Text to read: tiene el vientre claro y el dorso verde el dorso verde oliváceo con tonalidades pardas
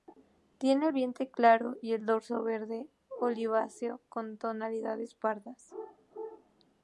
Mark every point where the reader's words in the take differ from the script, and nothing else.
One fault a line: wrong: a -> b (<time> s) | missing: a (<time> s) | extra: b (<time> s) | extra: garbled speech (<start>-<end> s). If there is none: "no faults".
missing: el dorso verde (2.9 s)